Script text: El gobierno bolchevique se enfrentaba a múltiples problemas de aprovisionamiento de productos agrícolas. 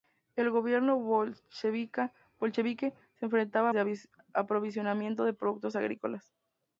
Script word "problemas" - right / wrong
wrong